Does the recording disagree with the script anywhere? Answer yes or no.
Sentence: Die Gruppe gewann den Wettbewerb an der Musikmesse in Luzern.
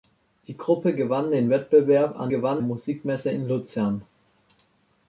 yes